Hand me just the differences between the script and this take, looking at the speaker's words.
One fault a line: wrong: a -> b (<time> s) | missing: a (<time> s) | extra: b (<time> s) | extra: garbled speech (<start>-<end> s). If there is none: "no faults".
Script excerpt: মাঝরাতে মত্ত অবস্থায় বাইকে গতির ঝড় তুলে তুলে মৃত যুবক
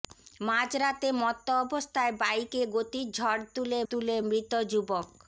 no faults